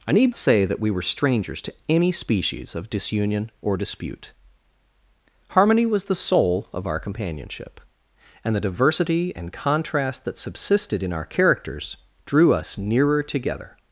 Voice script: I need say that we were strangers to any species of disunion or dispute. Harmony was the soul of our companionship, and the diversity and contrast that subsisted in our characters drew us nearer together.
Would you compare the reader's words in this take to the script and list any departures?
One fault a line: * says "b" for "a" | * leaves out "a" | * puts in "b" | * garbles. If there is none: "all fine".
all fine